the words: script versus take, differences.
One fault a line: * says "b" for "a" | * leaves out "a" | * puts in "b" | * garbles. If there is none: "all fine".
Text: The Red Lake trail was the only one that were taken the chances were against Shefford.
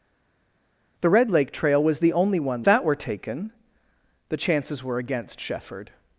all fine